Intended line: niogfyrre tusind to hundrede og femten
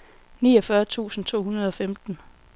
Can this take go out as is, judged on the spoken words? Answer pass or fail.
pass